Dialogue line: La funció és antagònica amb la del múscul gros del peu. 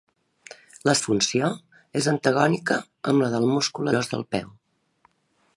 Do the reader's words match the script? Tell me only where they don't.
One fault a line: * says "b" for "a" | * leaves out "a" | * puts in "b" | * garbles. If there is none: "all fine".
all fine